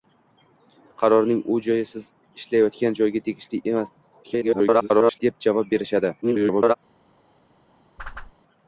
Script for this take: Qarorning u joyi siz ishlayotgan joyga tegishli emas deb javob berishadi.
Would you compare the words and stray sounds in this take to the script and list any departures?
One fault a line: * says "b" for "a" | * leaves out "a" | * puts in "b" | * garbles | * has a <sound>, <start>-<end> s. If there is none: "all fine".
* garbles
* garbles
* has a whoosh, 8.0-8.3 s